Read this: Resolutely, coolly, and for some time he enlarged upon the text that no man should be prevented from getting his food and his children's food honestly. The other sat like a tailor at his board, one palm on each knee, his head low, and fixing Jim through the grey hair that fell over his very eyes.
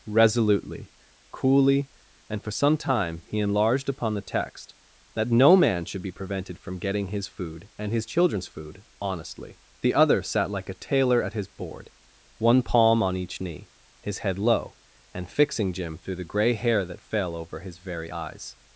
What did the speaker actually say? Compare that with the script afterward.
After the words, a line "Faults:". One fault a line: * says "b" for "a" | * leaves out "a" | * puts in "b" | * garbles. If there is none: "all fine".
Resolutely, coolly, and for some time he enlarged upon the text that no man should be prevented from getting his food and his children's food honestly. The other sat like a tailor at his board, one palm on each knee, his head low, and fixing Jim through the grey hair that fell over his very eyes.
Faults:
all fine